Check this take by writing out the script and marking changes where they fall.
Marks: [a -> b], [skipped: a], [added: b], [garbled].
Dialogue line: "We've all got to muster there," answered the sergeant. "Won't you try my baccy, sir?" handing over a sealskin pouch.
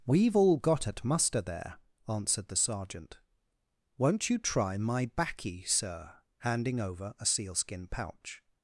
"We've all got [to -> at] muster there," answered the sergeant. "Won't you try my baccy, sir?" handing over a sealskin pouch.